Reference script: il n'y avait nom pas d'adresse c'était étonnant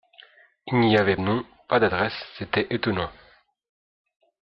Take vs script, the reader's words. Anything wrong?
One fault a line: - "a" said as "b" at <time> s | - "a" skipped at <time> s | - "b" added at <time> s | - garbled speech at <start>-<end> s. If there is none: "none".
none